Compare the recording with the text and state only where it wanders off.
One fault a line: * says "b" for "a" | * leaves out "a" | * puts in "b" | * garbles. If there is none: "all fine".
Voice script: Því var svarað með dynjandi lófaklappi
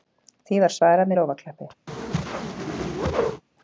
* leaves out "með dynjandi"